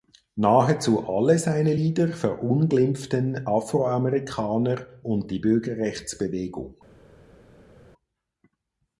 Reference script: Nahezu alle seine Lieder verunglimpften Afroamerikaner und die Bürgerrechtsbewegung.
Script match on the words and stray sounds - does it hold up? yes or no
yes